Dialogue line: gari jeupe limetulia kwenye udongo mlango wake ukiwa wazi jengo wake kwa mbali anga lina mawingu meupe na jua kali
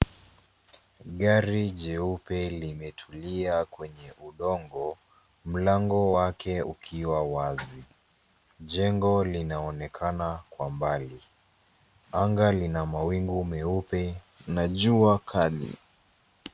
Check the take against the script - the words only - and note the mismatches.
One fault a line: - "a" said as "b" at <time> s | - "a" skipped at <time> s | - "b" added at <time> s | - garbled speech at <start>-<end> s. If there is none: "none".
- "wake" said as "linaonekana" at 9.2 s